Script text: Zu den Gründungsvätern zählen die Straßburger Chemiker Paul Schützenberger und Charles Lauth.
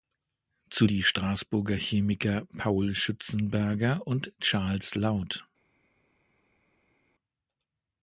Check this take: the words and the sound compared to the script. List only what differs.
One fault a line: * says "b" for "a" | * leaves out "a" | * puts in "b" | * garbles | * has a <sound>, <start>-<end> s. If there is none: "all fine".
* leaves out "den Gründungsvätern zählen"